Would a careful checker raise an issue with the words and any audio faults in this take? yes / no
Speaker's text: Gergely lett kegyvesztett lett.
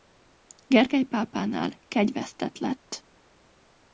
yes